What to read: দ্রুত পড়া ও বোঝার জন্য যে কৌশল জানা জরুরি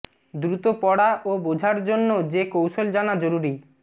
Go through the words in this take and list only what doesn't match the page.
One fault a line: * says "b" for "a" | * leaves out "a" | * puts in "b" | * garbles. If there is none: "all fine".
all fine